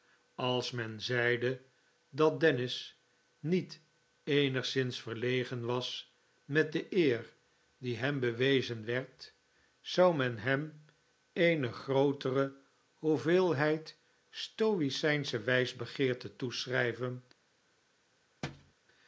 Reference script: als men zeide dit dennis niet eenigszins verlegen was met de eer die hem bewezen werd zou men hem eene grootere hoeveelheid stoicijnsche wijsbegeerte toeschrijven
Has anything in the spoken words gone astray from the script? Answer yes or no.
yes